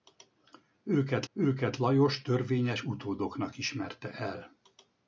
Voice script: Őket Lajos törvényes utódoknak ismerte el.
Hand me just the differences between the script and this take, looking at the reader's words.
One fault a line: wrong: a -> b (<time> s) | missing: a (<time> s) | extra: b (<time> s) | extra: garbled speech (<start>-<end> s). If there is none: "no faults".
extra: őket (1.3 s)